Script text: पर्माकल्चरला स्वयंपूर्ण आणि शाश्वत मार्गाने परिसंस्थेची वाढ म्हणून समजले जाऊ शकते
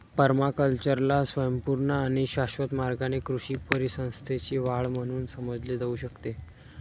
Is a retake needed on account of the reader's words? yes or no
yes